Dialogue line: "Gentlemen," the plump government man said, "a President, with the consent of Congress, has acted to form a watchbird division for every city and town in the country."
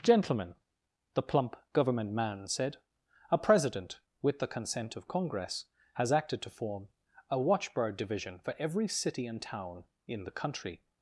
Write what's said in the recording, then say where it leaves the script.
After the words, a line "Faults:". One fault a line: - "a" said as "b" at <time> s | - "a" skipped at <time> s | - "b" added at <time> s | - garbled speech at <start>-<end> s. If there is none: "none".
"Gentlemen," the plump government man said, "a President, with the consent of Congress, has acted to form a watchbird division for every city and town in the country."
Faults:
none